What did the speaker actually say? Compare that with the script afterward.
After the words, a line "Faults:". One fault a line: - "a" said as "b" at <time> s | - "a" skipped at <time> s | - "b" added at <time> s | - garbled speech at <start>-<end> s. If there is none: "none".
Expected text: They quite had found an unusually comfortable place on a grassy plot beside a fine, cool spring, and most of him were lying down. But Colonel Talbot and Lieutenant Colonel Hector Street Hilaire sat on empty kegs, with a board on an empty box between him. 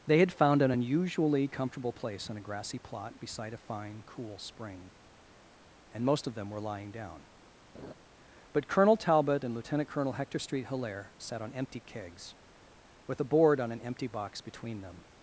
They had found an unusually comfortable place on a grassy plot beside a fine, cool spring, and most of them were lying down. But Colonel Talbot and Lieutenant Colonel Hector Street Hilaire sat on empty kegs, with a board on an empty box between them.
Faults:
- "quite" skipped at 0.2 s
- "him" said as "them" at 6.3 s
- "him" said as "them" at 14.8 s